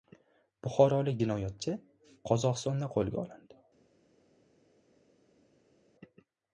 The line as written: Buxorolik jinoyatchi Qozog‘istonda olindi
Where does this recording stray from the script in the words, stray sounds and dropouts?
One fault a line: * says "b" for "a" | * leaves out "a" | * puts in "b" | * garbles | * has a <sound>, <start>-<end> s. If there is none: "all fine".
* puts in "qo‘lga"